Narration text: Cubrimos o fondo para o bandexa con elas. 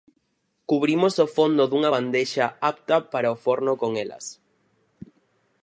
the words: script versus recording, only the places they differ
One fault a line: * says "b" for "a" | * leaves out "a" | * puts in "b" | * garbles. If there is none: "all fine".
* puts in "dunha bandexa apta"
* says "forno" for "bandexa"